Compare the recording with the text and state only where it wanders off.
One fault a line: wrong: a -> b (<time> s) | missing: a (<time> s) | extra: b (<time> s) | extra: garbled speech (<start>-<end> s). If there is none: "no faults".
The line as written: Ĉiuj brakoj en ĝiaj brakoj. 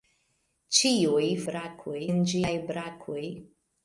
no faults